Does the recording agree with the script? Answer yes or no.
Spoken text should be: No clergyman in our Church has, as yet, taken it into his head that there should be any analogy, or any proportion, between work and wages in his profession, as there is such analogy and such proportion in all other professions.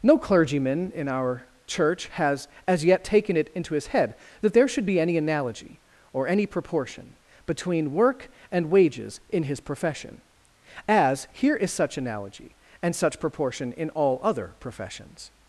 no